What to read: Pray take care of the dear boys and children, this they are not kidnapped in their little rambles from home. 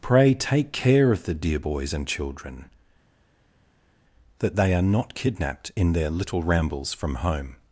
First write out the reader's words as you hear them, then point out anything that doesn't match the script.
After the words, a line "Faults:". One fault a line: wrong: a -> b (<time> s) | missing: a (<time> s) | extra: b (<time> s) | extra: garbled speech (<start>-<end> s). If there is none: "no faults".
Pray take care of the dear boys and children, that they are not kidnapped in their little rambles from home.
Faults:
wrong: this -> that (4.4 s)